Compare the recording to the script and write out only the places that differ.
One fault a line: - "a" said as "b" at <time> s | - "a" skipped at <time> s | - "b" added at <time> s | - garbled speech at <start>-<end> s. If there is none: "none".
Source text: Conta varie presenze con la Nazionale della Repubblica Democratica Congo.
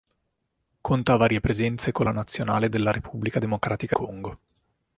none